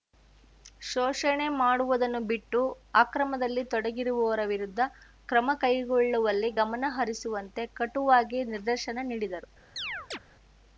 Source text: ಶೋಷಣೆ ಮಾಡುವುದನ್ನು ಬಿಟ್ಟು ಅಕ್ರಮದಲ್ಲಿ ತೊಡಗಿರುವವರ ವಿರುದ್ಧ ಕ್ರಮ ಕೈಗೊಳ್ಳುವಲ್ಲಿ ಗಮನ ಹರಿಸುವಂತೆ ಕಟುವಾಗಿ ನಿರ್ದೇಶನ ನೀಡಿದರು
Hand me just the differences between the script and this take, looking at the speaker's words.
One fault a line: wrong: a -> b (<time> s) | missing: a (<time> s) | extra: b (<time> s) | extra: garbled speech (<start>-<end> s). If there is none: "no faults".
no faults